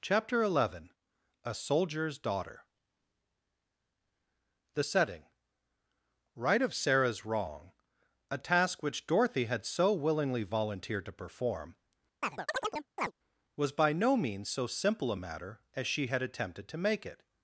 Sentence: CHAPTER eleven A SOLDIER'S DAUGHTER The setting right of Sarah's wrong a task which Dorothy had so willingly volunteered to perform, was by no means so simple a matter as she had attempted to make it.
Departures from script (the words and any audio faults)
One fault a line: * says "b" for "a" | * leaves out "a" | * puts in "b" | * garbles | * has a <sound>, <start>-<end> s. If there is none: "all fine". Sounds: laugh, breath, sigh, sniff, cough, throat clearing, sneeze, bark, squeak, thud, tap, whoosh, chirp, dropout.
* has a chirp, 12.2-13.1 s